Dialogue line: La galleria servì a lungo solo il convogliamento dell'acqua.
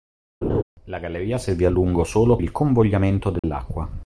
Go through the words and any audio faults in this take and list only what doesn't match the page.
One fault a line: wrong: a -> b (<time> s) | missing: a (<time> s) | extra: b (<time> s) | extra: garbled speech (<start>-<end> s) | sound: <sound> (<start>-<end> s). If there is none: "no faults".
sound: laugh (0.4-0.6 s)
sound: dropout (3.4-3.4 s)